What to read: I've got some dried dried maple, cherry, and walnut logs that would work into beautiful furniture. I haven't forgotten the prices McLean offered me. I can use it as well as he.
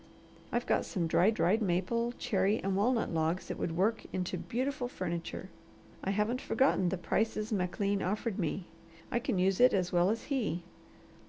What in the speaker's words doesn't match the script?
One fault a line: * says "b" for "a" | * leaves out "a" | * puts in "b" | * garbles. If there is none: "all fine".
all fine